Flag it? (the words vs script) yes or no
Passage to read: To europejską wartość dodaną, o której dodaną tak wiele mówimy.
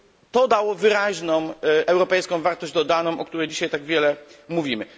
yes